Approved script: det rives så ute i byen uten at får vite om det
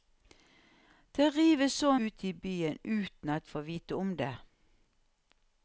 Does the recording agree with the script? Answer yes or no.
yes